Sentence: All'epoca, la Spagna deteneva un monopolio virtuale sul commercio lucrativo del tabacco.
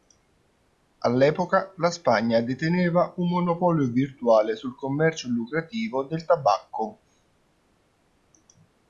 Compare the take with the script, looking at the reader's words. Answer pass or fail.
pass